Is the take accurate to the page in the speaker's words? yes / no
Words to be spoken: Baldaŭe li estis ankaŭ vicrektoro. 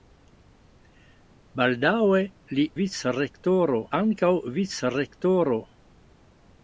no